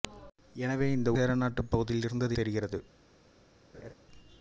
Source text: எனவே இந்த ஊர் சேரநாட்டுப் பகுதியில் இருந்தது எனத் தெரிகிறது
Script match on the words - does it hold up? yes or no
no